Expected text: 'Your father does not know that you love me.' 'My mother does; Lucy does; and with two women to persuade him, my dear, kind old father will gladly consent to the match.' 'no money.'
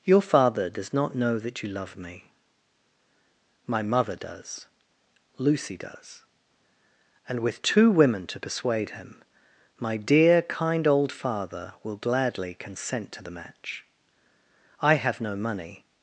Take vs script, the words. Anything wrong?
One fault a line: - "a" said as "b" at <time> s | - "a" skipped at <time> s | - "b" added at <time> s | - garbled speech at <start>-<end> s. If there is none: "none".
- "I have" added at 14.8 s